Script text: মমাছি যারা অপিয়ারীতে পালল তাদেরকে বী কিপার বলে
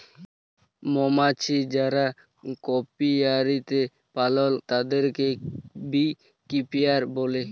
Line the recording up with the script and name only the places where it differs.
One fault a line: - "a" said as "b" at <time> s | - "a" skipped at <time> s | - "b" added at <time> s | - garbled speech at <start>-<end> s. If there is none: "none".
none